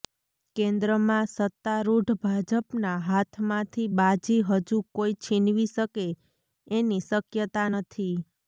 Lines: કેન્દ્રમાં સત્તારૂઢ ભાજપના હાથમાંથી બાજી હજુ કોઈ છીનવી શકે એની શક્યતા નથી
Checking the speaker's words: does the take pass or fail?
pass